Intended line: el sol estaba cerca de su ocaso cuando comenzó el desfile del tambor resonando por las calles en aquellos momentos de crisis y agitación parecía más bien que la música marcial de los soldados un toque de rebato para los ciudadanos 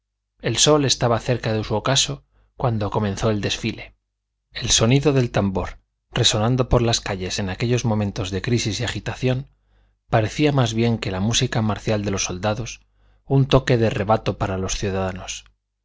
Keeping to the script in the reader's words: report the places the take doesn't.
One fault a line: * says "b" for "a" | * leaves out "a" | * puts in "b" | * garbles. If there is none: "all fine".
* puts in "el sonido"